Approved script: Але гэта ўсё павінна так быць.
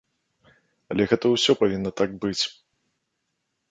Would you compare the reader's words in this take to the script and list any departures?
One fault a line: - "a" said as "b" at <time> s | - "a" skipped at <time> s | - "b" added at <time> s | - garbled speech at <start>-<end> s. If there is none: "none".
none